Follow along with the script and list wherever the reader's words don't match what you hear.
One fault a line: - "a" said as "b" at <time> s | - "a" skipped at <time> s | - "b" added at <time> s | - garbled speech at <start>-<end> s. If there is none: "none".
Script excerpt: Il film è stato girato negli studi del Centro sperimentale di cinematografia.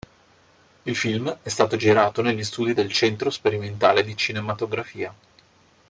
none